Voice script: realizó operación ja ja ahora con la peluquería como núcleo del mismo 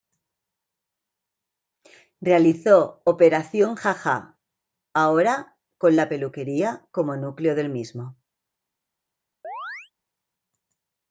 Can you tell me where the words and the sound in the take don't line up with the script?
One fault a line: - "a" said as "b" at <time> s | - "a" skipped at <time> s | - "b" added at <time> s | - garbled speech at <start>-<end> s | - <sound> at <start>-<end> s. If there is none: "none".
- chirp at 9.4-9.9 s